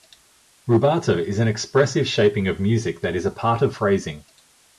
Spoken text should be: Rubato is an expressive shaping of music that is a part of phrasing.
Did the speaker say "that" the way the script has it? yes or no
yes